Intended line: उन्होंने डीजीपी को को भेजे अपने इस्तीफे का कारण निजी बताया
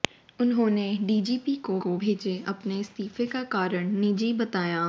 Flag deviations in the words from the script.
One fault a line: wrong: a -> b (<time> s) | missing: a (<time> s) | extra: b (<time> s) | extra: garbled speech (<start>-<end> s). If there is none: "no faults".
no faults